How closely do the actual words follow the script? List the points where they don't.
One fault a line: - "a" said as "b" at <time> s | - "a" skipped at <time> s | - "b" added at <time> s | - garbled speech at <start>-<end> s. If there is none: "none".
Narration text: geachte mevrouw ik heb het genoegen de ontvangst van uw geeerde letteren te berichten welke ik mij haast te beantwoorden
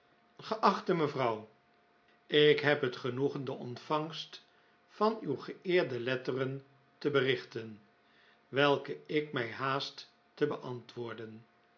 none